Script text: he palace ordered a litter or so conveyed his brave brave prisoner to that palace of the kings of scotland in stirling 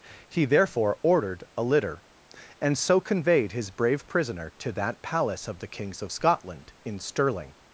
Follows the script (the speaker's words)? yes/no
no